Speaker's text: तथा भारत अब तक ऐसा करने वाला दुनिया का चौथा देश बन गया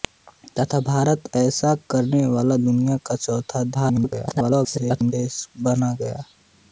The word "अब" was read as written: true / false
false